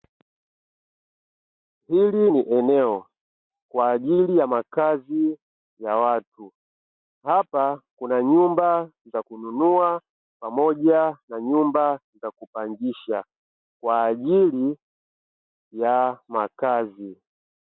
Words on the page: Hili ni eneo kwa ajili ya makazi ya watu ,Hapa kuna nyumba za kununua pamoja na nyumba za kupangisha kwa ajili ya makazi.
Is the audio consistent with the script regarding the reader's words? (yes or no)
yes